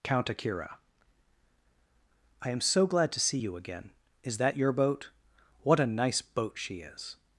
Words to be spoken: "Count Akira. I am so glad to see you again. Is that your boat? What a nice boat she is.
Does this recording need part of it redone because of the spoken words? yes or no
no